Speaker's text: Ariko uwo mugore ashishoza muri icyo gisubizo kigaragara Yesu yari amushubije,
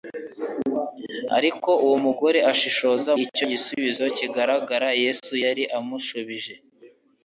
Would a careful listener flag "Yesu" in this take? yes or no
no